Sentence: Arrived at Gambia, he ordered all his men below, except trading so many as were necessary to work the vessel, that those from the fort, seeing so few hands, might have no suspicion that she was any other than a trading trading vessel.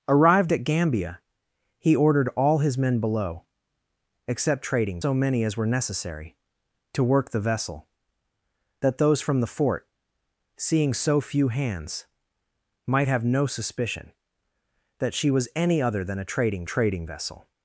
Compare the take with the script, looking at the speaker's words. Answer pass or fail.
pass